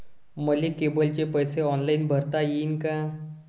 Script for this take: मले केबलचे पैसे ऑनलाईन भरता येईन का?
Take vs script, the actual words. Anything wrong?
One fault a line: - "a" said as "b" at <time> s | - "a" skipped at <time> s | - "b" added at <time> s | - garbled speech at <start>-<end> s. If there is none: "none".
none